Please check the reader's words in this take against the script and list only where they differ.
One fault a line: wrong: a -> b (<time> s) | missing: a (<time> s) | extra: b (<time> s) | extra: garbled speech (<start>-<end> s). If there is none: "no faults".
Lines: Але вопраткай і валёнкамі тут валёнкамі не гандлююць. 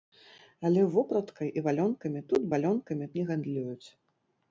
no faults